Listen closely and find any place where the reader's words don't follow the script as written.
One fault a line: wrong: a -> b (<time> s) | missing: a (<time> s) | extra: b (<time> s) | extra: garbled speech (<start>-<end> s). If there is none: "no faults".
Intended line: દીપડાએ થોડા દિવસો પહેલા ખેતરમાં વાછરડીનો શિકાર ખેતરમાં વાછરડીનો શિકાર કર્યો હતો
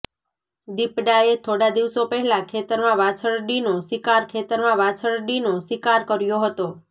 no faults